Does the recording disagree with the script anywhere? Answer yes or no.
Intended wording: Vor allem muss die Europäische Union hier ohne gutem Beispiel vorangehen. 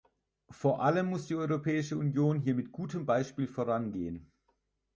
yes